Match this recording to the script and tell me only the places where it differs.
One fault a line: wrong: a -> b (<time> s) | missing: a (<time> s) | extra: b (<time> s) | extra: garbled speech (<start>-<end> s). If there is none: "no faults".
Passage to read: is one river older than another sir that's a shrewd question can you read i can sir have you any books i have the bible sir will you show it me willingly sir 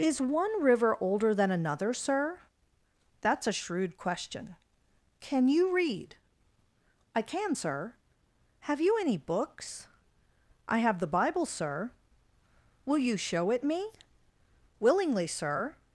no faults